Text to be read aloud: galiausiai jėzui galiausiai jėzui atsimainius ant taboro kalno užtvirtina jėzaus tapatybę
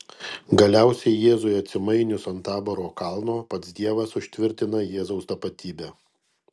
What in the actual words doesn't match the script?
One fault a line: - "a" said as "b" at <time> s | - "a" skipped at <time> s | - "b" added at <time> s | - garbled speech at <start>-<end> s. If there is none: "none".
- "galiausiai jėzui" skipped at 1.5 s
- "pats dievas" added at 3.6 s